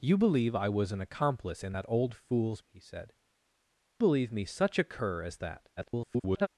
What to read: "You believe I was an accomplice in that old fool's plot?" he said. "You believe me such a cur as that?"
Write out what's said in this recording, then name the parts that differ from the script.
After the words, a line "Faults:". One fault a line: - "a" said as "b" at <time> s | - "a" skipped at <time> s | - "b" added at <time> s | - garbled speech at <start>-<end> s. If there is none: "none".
"You believe I was an accomplice in that old fool's?" he said. "Believe me such a cur as that?" [garbled]
Faults:
- "plot" skipped at 2.6 s
- "You" skipped at 3.1 s
- garbled speech at 5.8-6.5 s